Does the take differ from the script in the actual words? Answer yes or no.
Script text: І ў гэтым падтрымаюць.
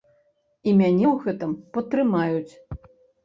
yes